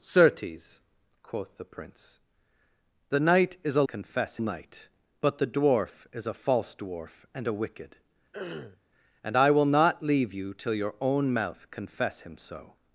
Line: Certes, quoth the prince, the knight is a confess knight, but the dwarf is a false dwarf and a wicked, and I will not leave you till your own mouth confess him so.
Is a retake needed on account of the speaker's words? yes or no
no